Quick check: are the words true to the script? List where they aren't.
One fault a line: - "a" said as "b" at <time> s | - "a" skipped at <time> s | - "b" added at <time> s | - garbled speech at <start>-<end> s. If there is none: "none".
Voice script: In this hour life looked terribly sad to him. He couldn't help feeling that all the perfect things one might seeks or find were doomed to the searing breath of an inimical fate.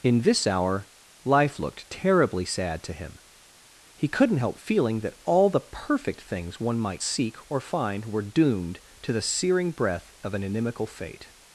- "seeks" said as "seek" at 7.0 s